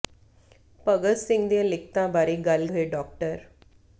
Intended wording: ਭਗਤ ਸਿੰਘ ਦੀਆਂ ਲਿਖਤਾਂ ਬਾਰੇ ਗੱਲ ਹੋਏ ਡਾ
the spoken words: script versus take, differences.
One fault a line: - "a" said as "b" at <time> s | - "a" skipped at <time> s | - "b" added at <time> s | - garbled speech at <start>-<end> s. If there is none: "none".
none